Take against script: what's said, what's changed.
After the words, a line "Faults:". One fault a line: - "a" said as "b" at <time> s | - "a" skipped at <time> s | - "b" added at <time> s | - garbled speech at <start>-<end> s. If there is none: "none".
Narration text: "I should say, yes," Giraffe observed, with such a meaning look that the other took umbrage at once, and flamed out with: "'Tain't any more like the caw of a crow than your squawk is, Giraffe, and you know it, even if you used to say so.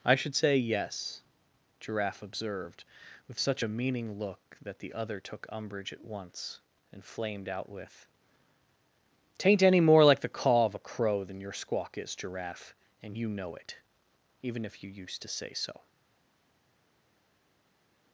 "I should say, yes," Giraffe observed, with such a meaning look that the other took umbrage at once, and flamed out with: "'Tain't any more like the caw of a crow than your squawk is, Giraffe, and you know it, even if you used to say so.
Faults:
none